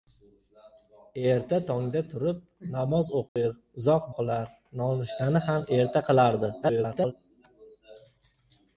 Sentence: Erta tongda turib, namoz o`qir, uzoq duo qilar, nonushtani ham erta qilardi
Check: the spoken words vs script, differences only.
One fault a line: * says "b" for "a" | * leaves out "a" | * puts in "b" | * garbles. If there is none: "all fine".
* leaves out "duo"
* garbles